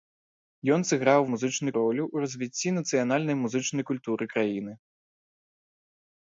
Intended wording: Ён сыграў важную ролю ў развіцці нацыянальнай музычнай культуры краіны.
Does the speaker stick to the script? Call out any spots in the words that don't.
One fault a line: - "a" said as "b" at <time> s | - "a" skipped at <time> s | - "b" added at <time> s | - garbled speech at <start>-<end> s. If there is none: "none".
- "важную" said as "музычнай" at 1.3 s